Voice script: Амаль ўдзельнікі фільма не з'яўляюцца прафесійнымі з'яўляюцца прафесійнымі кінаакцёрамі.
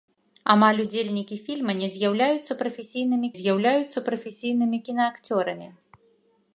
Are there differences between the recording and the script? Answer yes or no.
no